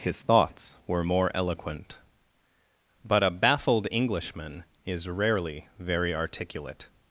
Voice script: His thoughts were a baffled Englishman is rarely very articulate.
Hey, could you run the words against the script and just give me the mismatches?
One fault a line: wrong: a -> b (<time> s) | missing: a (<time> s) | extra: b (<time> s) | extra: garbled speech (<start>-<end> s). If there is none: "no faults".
extra: more eloquent But (1.0 s)